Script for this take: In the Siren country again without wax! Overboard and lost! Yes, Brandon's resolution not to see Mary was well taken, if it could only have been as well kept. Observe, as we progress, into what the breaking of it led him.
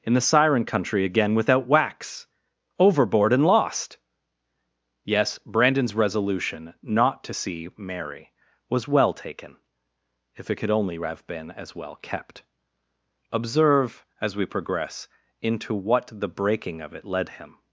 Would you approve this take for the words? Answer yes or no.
yes